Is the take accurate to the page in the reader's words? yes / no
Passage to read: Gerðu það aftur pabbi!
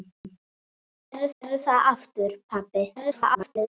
no